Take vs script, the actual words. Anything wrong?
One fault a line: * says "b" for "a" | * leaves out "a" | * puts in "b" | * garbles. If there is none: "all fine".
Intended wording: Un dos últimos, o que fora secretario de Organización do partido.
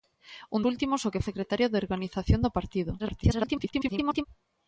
* leaves out "dos"
* leaves out "fora"
* garbles